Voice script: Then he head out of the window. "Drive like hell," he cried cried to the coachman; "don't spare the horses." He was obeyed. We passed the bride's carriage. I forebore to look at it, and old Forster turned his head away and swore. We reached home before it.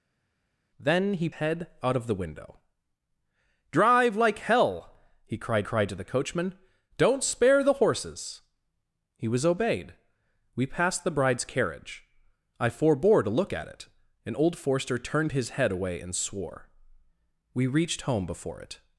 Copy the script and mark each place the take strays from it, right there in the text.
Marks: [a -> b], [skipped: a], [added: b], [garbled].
Then he head out of the window. "Drive like hell," he cried cried to the coachman; "don't spare the horses." He was obeyed. We passed the bride's carriage. I forebore to look at it, and old Forster turned his head away and swore. We reached home before it.